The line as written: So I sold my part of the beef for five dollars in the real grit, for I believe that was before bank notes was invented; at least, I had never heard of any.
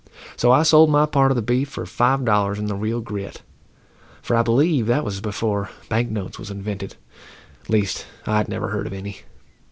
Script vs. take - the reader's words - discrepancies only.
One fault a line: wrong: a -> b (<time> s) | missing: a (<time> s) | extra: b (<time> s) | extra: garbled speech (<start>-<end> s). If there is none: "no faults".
no faults